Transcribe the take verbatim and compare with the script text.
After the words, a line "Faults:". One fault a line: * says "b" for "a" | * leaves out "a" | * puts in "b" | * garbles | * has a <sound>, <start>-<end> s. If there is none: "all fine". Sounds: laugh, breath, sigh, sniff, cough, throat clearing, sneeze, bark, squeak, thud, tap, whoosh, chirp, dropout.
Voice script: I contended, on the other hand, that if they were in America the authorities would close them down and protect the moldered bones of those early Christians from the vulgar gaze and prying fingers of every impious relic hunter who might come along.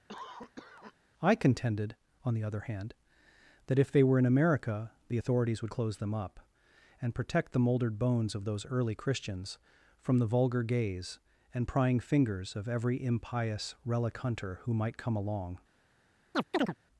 I contended, on the other hand, that if they were in America the authorities would close them up and protect the moldered bones of those early Christians from the vulgar gaze and prying fingers of every impious relic hunter who might come along.
Faults:
* has a cough, 0.1-0.9 s
* says "up" for "down"
* has a chirp, 16.3-16.8 s